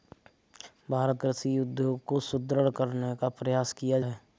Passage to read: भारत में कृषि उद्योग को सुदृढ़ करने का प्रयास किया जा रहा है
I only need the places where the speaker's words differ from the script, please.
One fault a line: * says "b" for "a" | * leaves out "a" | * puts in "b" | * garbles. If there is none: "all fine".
* leaves out "में"
* leaves out "जा रहा"